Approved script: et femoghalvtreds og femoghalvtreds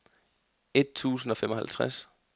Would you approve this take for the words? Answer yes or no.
no